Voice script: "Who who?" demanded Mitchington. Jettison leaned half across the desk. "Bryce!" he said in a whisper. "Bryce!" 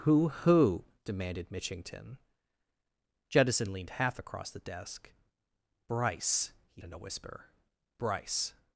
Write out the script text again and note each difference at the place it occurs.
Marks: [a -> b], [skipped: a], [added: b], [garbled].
"Who who?" demanded Mitchington. Jettison leaned half across the desk. "Bryce!" he [skipped: said] in a whisper. "Bryce!"